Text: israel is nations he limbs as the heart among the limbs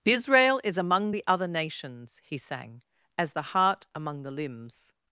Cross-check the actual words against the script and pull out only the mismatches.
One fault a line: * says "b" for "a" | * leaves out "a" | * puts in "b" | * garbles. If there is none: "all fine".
* puts in "among the other"
* says "sang" for "limbs"